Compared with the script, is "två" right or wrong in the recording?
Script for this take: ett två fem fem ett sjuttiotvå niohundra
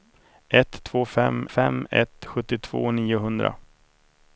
right